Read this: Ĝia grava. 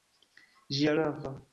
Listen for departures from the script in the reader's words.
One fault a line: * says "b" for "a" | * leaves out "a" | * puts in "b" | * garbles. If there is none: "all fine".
all fine